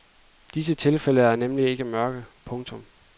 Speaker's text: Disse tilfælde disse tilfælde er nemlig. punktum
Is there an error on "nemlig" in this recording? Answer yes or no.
yes